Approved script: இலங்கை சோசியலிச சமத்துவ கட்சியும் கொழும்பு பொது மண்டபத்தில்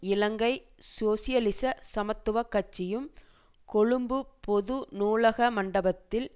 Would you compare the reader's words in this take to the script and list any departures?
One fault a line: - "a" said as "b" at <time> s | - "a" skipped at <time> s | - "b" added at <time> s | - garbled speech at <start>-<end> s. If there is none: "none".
- "நூலக" added at 4.9 s